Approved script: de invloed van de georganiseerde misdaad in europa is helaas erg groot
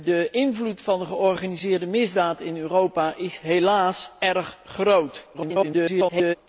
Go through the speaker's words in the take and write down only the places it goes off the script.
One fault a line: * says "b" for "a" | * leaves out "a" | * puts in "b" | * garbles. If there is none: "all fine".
* garbles